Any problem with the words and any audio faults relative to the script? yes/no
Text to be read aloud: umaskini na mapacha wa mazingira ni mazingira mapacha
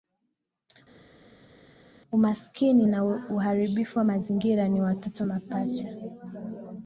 yes